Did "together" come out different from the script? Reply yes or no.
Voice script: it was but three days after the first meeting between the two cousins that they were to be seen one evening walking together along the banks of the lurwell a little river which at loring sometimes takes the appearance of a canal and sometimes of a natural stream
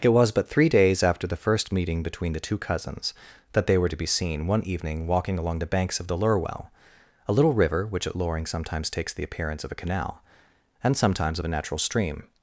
yes